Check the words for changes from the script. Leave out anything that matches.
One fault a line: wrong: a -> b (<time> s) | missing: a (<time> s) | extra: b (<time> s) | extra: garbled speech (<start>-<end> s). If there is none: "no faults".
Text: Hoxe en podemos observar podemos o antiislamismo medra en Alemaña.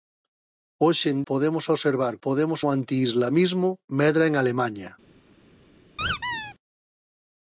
no faults